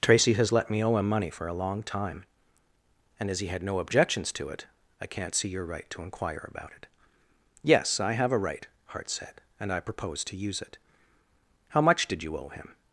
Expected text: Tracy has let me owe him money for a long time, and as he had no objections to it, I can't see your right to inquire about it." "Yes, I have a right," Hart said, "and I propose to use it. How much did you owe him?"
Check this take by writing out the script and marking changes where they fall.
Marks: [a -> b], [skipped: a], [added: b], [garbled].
Tracy has let me owe him money for a long time, and as he had no objections to it, I can't see your right to inquire about it." "Yes, I have a right," Hart said, "and I propose to use it. How much did you owe him?"